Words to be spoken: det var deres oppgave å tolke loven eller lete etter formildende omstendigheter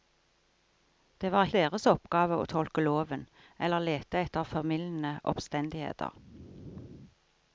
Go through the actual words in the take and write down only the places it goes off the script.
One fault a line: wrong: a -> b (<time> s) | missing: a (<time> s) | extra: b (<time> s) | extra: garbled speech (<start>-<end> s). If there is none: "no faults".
no faults